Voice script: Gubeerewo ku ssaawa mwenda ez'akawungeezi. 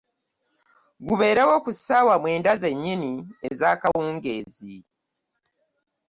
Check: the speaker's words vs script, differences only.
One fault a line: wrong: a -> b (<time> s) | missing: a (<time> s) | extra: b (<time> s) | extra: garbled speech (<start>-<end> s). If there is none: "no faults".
extra: zennyini (2.6 s)